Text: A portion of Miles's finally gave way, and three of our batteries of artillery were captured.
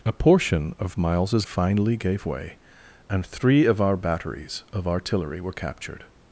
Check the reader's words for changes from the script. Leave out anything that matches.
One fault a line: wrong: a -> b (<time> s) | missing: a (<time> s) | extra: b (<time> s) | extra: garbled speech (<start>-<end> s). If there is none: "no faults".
no faults